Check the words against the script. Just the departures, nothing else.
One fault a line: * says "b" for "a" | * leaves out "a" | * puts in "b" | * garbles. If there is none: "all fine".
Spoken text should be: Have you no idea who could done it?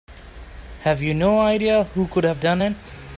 * puts in "have"